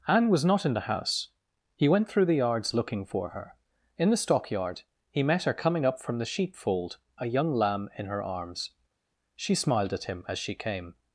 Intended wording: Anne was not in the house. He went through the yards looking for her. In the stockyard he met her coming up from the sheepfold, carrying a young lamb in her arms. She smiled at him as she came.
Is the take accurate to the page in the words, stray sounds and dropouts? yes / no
no